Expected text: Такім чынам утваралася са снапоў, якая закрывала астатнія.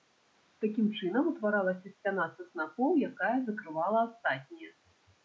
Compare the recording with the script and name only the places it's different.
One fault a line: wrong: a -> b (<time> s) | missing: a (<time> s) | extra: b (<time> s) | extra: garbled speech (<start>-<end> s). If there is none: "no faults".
extra: сцяна (1.9 s)